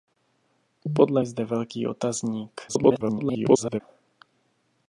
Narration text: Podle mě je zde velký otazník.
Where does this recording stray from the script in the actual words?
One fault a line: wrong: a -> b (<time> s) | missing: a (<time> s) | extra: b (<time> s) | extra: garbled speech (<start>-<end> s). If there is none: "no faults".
missing: mě (1.2 s)
extra: garbled speech (2.7-3.8 s)